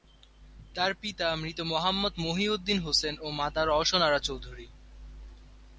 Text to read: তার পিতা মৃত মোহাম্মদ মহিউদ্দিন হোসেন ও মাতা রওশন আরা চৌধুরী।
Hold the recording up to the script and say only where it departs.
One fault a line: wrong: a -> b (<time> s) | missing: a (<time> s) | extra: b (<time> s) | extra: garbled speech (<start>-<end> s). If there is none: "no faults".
no faults